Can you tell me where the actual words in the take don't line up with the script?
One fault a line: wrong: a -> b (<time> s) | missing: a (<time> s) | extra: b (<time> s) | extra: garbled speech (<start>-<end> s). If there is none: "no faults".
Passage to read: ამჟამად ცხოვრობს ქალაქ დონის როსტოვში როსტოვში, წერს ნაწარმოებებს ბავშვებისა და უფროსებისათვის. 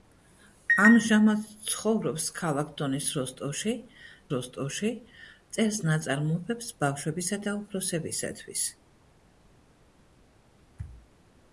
no faults